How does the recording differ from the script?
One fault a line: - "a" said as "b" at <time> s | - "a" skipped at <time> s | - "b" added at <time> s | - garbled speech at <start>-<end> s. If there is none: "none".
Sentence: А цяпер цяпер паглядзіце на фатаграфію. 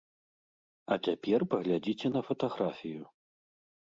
- "цяпер" skipped at 1.4 s